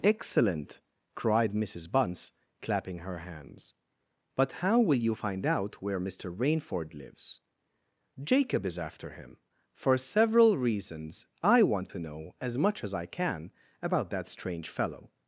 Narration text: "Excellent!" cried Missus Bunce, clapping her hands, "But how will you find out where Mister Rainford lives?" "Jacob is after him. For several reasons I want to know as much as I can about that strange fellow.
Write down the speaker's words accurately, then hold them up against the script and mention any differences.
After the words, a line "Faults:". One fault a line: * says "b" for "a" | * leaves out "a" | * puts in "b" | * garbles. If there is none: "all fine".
"Excellent!" cried Missus Bunce, clapping her hands, "But how will you find out where Mister Rainford lives?" "Jacob is after him. For several reasons I want to know as much as I can about that strange fellow.
Faults:
all fine